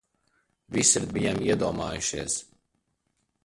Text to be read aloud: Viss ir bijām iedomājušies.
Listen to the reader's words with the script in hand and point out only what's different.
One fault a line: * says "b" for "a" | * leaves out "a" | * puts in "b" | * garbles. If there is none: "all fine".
all fine